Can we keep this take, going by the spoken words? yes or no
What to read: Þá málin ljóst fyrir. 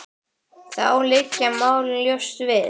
no